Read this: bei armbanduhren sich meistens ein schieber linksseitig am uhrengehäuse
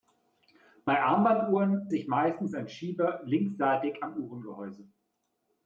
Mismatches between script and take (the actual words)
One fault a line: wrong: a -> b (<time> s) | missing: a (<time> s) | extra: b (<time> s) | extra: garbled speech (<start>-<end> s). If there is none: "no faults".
no faults